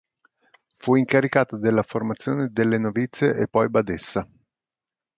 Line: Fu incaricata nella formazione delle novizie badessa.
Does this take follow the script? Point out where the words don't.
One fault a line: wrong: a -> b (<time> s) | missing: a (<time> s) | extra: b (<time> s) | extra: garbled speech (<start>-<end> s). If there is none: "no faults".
wrong: nella -> della (1.6 s)
extra: e poi (3.4 s)